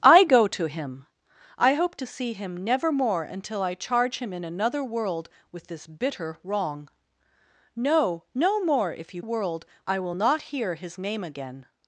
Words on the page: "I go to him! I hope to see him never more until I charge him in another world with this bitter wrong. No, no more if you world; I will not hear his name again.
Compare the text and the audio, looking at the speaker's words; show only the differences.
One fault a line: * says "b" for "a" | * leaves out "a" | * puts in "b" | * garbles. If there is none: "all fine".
all fine